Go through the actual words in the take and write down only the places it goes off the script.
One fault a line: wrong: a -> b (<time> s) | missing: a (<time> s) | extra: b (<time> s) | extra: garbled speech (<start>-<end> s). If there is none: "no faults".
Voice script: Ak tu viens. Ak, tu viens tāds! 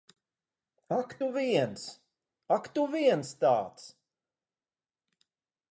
no faults